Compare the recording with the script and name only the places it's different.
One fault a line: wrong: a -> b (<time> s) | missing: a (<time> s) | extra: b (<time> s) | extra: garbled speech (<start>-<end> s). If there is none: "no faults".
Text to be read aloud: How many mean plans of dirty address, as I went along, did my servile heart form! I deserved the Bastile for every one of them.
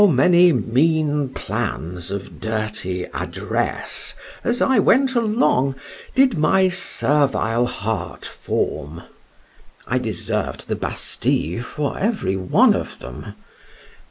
no faults